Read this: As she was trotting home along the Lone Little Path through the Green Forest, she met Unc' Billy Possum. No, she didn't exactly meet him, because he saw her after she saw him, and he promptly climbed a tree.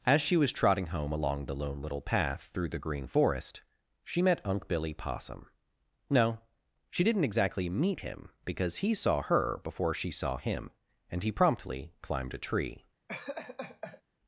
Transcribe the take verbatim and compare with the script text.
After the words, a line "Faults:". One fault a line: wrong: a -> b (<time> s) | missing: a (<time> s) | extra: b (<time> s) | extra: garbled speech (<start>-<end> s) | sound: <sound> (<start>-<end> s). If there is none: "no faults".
As she was trotting home along the Lone Little Path through the Green Forest, she met Unc' Billy Possum. No, she didn't exactly meet him, because he saw her before she saw him, and he promptly climbed a tree.
Faults:
wrong: after -> before (9.6 s)
sound: laugh (13.1-14.0 s)